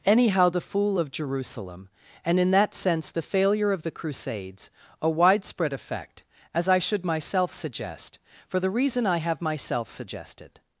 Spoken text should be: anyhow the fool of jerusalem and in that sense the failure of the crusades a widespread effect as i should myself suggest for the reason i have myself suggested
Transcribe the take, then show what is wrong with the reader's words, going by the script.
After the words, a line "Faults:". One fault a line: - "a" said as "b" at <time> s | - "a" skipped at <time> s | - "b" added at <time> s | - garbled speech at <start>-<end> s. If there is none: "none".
anyhow the fool of jerusalem and in that sense the failure of the crusades a widespread effect as i should myself suggest for the reason i have myself suggested
Faults:
none